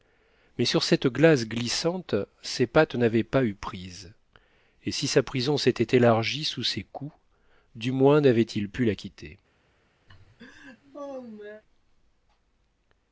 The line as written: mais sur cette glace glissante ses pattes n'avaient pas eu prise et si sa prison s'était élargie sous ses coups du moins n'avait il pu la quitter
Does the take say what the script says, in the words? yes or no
yes